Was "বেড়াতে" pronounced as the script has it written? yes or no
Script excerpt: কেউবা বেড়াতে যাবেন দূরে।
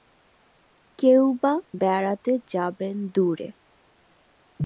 yes